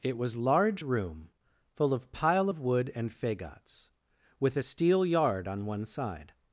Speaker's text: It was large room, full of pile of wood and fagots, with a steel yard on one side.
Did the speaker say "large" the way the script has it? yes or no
yes